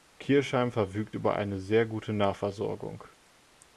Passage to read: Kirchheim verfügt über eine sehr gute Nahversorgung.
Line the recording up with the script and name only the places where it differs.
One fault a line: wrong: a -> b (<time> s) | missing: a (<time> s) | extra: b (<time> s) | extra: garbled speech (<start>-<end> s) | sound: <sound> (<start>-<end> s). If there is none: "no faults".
no faults